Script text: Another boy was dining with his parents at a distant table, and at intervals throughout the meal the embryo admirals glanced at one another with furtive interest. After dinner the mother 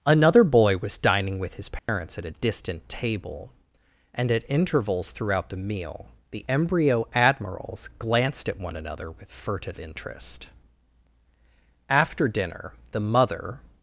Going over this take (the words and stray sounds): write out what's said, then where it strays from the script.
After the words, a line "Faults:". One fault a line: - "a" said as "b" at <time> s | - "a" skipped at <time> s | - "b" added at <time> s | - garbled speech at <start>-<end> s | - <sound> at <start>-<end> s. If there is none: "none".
Another boy was dining with his parents at a distant table, and at intervals throughout the meal the embryo admirals glanced at one another with furtive interest. After dinner the mother
Faults:
- dropout at 1.8-1.9 s